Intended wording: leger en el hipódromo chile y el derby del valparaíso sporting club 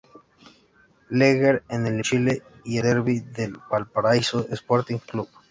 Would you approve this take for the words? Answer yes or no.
no